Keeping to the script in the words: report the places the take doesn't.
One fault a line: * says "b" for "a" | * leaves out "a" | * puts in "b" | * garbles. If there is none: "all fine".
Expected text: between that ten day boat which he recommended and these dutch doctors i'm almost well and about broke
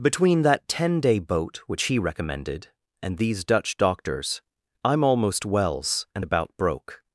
* says "wells" for "well"